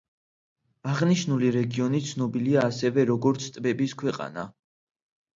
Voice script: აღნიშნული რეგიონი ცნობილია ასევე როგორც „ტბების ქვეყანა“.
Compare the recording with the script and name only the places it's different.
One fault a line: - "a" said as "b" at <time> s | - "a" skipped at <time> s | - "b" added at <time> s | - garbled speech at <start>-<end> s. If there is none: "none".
none